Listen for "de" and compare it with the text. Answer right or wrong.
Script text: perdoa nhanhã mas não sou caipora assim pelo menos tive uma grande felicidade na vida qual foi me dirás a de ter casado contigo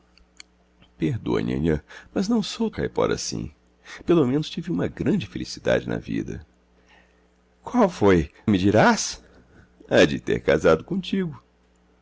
right